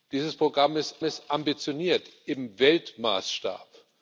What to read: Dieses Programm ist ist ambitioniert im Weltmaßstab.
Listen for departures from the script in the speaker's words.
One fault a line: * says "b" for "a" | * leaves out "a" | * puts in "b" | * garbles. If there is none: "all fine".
all fine